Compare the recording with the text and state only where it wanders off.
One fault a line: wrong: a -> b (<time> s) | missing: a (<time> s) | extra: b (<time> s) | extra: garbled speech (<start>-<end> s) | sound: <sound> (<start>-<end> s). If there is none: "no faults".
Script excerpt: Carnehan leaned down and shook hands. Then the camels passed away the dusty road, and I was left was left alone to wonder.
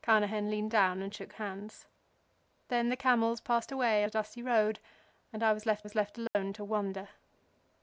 sound: dropout (6.3-6.4 s)